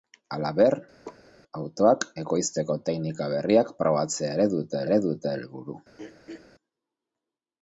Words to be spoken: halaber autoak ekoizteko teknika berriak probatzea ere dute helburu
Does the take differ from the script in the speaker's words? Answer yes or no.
yes